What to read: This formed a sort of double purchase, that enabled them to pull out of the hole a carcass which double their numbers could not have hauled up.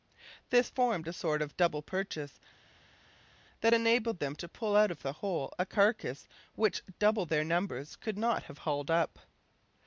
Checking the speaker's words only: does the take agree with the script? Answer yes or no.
yes